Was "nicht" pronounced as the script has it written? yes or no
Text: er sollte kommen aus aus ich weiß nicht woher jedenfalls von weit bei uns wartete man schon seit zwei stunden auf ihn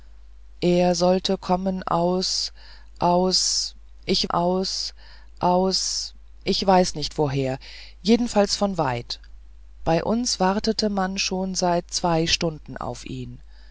yes